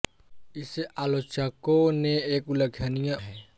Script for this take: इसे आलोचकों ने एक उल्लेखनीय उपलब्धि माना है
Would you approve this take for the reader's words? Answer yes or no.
no